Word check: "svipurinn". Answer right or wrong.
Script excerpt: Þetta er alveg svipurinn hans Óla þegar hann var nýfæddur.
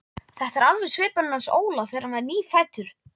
right